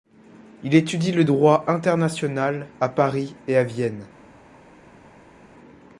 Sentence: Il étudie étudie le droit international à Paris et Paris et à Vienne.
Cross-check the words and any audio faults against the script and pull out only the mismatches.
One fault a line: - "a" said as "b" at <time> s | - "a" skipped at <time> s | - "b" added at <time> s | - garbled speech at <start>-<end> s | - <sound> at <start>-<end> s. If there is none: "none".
- "étudie" skipped at 1.1 s
- "Paris et" skipped at 3.6 s